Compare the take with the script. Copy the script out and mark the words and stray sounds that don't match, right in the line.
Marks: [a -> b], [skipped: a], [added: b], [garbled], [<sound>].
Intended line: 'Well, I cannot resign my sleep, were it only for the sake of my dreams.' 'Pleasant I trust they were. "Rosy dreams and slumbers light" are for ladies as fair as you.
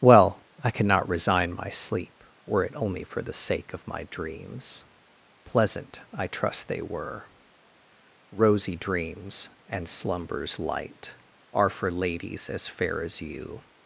'Well, I cannot resign my sleep, were it only for the sake of my dreams.' 'Pleasant I trust they were. "Rosy dreams and slumbers light" are for ladies as fair as you.